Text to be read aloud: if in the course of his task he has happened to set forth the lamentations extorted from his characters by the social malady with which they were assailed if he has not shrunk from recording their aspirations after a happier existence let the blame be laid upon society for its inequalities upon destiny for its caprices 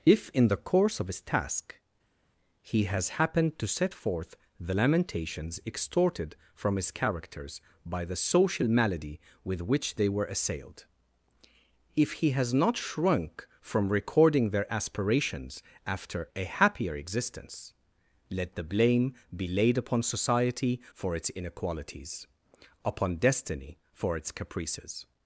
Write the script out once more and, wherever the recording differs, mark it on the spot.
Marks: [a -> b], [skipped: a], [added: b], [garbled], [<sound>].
if in the course of his task he has happened to set forth the lamentations extorted from his characters by the social malady with which they were assailed if he has not shrunk from recording their aspirations after a happier existence let the blame be laid upon society for its inequalities upon destiny for its caprices